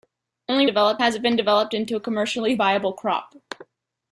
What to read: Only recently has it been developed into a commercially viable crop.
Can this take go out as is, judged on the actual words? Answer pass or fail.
fail